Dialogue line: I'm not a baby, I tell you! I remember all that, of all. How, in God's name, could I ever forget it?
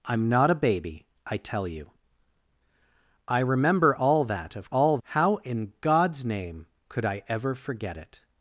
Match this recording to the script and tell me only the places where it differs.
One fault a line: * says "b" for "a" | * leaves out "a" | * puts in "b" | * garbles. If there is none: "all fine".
all fine